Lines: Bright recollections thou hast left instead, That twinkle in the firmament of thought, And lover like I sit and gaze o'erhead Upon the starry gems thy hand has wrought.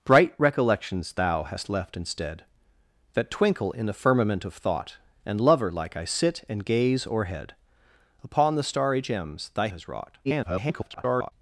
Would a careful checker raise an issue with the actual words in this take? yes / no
yes